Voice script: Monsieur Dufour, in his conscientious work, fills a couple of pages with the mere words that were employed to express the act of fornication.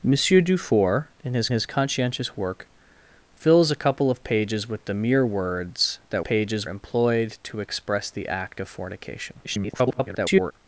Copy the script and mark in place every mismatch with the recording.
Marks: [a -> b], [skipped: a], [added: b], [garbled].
Monsieur Dufour, in his [added: his] conscientious work, fills a couple of pages with the mere words that [were -> pages] employed to express the act of fornication. [garbled]